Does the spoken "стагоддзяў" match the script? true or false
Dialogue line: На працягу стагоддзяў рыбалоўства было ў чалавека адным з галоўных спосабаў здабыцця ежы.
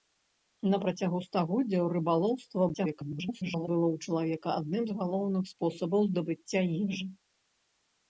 true